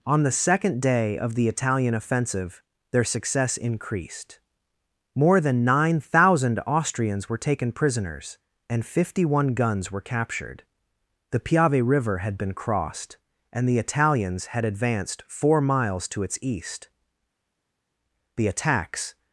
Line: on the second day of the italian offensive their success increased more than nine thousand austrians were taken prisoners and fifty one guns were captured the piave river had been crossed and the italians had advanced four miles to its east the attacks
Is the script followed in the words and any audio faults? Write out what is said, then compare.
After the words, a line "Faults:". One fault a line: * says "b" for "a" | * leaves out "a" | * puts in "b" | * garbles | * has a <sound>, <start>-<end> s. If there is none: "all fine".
on the second day of the italian offensive their success increased more than nine thousand austrians were taken prisoners and fifty one guns were captured the piave river had been crossed and the italians had advanced four miles to its east the attacks
Faults:
all fine